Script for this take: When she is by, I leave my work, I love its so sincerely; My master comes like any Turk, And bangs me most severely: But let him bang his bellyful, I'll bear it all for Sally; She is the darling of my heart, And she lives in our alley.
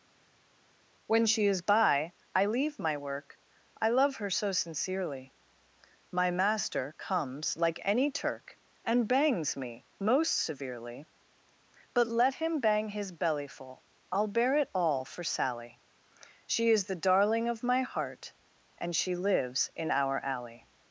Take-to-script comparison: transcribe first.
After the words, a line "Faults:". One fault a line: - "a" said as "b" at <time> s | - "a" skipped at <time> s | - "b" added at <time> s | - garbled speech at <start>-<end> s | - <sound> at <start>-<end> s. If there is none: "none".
When she is by, I leave my work, I love her so sincerely; My master comes like any Turk, And bangs me most severely: But let him bang his bellyful, I'll bear it all for Sally; She is the darling of my heart, And she lives in our alley.
Faults:
- "its" said as "her" at 4.2 s